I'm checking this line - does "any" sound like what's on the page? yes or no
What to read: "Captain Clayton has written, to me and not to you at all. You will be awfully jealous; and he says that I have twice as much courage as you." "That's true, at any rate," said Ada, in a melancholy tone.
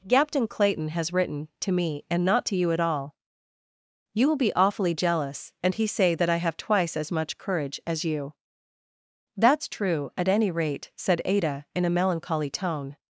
yes